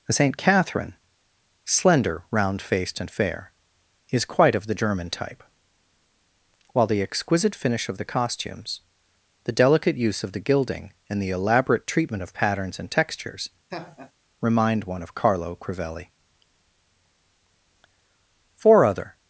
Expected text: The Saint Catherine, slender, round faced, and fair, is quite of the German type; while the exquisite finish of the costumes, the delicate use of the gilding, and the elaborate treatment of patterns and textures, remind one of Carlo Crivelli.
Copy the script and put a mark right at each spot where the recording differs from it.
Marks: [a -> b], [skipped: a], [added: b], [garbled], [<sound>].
The Saint Catherine, slender, round faced, and fair, is quite of the German type; while the exquisite finish of the costumes, the delicate use of the gilding, and the elaborate treatment of patterns and textures, [laugh] remind one of Carlo Crivelli. [added: Four other]